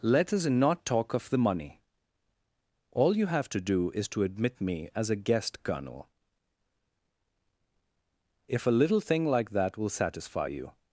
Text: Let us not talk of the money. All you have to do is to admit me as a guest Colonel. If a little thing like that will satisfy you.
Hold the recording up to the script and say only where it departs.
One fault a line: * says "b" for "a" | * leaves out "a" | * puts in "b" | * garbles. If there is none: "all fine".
all fine